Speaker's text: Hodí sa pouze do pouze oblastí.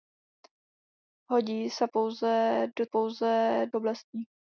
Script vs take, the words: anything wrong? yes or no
no